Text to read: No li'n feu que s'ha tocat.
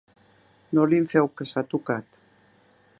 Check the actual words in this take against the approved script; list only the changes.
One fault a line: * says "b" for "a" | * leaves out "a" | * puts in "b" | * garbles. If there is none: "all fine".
all fine